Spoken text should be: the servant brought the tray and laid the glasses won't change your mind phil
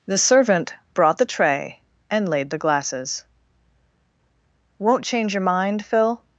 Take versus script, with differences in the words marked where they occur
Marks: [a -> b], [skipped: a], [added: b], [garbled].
the servant brought the tray and laid the glasses won't change your mind phil